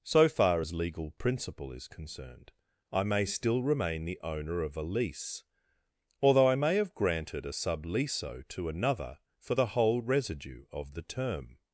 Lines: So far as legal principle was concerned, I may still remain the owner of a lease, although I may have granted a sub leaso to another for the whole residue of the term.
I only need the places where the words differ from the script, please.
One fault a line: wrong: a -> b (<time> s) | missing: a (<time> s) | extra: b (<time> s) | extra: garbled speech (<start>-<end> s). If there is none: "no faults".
wrong: was -> is (1.7 s)